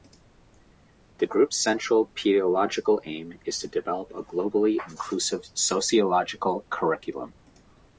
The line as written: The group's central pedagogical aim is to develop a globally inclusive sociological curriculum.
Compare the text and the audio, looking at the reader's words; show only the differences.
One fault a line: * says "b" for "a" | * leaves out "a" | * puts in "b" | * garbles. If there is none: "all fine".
all fine